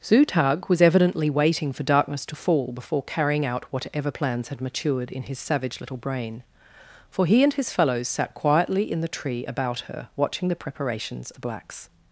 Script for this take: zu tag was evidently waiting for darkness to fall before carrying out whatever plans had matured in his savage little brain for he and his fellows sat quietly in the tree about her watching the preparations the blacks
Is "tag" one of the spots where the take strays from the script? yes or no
no